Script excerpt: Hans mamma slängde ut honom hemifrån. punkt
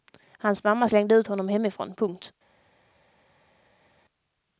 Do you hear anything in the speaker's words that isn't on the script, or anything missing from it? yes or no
no